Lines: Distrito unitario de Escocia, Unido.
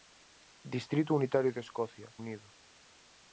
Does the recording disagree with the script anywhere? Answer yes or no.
no